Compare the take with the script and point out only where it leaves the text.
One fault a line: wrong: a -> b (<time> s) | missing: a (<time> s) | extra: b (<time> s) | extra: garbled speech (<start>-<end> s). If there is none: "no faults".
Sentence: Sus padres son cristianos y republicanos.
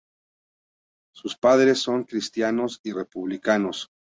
no faults